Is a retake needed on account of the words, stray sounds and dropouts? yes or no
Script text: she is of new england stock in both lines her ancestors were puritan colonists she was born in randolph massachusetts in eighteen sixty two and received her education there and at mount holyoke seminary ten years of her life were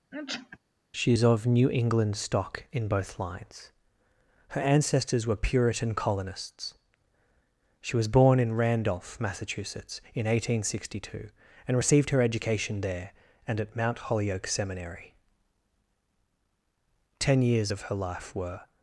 yes